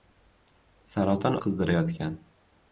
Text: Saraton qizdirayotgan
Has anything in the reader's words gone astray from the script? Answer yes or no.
no